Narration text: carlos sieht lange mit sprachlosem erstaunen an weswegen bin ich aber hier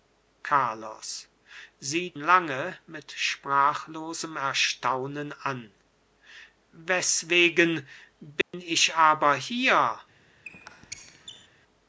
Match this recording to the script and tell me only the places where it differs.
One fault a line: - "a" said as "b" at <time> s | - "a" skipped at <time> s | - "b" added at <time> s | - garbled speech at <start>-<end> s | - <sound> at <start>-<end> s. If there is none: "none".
- dropout at 8.4-8.5 s
- squeak at 10.4-11.5 s